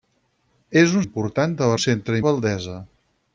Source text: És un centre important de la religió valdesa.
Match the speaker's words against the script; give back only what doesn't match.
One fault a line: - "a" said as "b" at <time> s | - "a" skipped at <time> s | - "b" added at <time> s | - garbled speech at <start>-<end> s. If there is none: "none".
- "centre" skipped at 1.0 s
- "religió" said as "centre" at 1.8 s